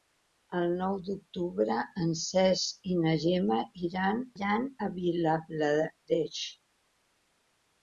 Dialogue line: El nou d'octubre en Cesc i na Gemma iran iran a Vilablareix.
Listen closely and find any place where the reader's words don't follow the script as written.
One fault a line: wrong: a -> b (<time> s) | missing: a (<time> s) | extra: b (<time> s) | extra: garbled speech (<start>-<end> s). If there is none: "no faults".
no faults